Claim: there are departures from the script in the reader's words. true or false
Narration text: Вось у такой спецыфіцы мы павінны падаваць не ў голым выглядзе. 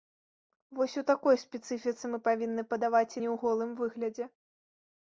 false